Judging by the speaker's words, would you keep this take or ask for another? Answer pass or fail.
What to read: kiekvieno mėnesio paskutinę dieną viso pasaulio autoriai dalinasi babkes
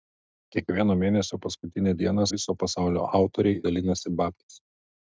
pass